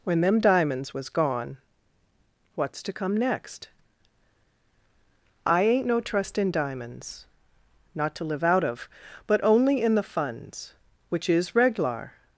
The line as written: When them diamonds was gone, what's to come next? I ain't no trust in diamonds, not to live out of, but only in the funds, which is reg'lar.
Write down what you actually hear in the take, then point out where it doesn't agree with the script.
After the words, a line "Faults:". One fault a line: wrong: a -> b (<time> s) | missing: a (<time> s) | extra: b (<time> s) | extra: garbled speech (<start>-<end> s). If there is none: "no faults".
When them diamonds was gone, what's to come next? I ain't no trust in diamonds, not to live out of, but only in the funds, which is reg'lar.
Faults:
no faults